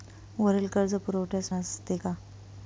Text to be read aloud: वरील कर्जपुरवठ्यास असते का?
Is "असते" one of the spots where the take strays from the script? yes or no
no